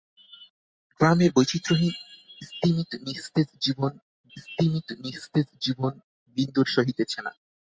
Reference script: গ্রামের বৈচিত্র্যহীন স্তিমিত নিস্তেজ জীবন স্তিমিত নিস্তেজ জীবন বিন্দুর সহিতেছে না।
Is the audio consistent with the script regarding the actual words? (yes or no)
yes